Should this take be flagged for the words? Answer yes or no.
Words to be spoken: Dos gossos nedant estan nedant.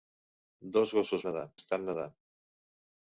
no